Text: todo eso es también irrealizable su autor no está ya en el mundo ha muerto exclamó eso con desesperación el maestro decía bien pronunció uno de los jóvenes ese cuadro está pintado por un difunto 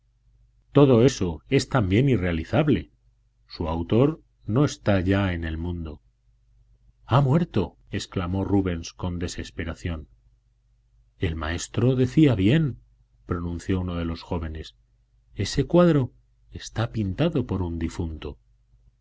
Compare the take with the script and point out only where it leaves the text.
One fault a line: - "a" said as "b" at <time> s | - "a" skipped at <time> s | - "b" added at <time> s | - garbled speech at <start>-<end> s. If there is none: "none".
- "eso" said as "rubens" at 8.4 s